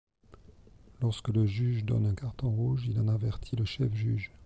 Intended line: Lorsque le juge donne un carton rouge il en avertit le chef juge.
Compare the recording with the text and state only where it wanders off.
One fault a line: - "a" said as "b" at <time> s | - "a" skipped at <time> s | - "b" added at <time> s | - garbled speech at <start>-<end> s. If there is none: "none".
none